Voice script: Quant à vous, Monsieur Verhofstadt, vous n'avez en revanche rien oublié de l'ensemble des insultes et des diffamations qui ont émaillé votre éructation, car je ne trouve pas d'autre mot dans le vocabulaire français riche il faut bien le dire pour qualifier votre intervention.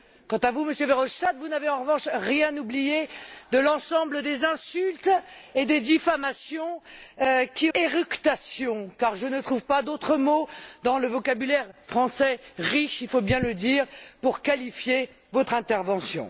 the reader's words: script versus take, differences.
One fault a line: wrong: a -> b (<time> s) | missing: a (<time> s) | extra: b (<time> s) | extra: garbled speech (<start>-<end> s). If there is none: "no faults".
missing: ont émaillé votre (7.7 s)